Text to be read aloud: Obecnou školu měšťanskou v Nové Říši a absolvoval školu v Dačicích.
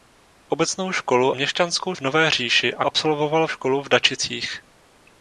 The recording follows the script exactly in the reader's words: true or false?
true